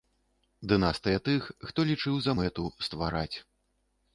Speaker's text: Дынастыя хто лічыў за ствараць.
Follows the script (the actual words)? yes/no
no